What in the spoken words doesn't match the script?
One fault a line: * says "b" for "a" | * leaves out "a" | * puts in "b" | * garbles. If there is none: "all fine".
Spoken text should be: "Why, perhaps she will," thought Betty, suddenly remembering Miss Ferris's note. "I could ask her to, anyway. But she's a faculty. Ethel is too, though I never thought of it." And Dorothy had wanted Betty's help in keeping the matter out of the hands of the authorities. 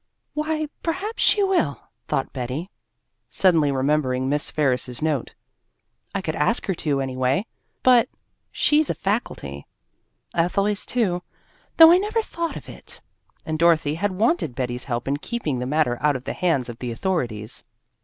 all fine